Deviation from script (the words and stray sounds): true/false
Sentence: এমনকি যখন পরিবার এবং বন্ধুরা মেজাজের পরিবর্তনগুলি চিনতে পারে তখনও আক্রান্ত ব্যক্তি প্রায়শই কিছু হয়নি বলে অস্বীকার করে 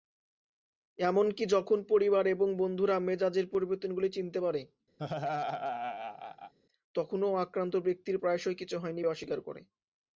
true